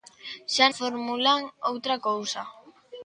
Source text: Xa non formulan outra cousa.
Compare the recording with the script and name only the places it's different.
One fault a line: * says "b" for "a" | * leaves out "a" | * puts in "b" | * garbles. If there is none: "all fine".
* leaves out "non"